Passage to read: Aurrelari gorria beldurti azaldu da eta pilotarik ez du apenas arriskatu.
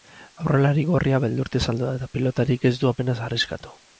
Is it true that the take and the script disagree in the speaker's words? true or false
false